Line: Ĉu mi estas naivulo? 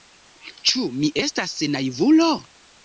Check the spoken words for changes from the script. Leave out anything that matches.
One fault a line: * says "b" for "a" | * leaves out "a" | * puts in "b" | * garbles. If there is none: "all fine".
all fine